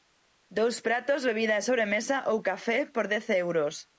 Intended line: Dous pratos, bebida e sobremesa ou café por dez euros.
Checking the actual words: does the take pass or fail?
pass